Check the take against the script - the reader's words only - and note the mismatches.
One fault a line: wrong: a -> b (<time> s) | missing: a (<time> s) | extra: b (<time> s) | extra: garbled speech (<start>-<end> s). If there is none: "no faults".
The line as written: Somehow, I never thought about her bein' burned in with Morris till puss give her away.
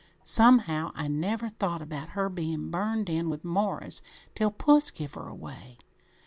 no faults